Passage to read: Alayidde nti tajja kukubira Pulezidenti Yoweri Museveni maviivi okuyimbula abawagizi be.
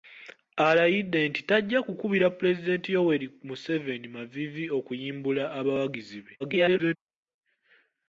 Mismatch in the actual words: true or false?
true